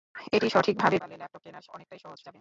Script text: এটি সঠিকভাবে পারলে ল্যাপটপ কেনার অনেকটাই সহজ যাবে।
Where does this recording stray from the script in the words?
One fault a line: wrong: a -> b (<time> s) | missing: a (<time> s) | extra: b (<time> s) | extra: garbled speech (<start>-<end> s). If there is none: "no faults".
no faults